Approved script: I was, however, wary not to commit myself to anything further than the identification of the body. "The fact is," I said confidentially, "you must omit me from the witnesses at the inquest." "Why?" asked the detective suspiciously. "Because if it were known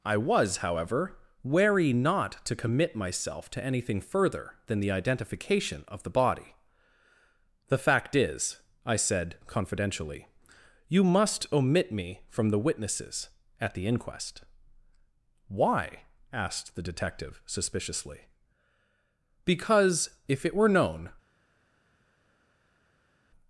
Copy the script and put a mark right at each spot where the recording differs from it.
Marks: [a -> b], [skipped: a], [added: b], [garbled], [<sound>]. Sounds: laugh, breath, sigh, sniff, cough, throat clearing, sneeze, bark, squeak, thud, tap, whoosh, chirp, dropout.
I was, however, wary not to commit myself to anything further than the identification of the body. "The fact is," I said confidentially, "you must omit me from the witnesses at the inquest." "Why?" asked the detective suspiciously. "Because if it were known